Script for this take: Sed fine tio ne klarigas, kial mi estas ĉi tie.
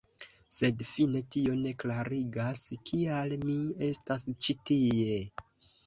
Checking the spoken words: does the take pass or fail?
pass